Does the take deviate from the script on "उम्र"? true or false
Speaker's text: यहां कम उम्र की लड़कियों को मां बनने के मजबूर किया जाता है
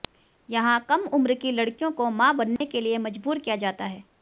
false